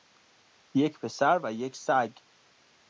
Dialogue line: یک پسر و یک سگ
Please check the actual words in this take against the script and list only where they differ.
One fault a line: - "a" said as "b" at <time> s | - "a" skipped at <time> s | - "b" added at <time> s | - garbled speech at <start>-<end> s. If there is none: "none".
none